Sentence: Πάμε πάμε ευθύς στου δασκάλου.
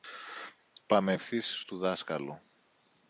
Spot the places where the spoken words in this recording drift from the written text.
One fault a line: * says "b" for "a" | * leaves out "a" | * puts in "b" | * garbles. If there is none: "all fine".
* leaves out "πάμε"